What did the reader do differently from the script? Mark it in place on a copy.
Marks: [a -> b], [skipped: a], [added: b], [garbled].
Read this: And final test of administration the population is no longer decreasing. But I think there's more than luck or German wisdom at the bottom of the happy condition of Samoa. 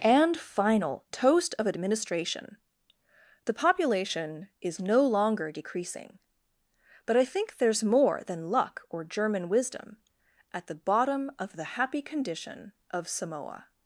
And final [test -> toast] of administration the population is no longer decreasing. But I think there's more than luck or German wisdom at the bottom of the happy condition of Samoa.